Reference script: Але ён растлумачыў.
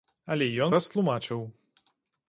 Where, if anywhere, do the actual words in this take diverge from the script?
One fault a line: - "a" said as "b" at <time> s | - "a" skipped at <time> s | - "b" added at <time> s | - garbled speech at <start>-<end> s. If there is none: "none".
none